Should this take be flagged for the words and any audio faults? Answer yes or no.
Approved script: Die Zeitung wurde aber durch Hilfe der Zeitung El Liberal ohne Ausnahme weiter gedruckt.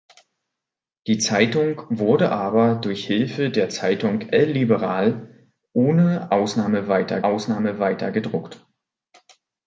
yes